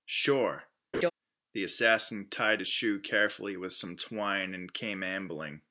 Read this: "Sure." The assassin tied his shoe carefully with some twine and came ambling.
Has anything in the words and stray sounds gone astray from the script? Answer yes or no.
yes